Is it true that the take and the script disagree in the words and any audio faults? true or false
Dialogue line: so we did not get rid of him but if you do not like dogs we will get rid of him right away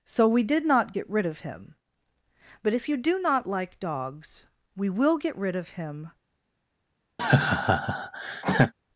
true